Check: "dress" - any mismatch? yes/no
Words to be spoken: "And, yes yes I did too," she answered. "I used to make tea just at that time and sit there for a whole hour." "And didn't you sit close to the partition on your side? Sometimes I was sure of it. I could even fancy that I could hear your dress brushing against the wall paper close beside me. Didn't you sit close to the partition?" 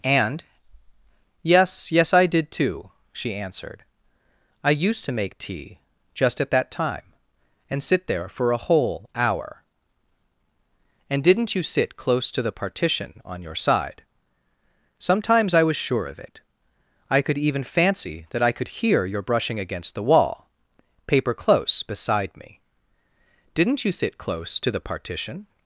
yes